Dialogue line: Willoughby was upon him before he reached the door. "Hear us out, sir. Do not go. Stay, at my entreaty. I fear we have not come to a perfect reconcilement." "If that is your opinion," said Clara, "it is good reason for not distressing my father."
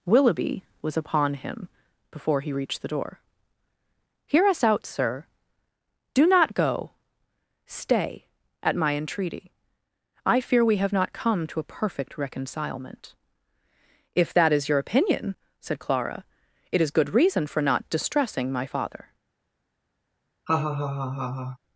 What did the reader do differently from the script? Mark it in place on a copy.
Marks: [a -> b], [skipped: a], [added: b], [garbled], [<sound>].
Willoughby was upon him before he reached the door. "Hear us out, sir. Do not go. Stay, at my entreaty. I fear we have not come to a perfect reconcilement." "If that is your opinion," said Clara, "it is good reason for not distressing my father." [laugh]